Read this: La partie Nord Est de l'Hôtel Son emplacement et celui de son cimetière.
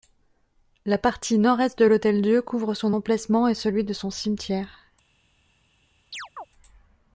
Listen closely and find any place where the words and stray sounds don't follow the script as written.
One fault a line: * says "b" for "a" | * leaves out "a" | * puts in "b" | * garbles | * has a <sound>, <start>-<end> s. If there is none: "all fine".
* puts in "Dieu couvre"
* has a chirp, 6.1-6.5 s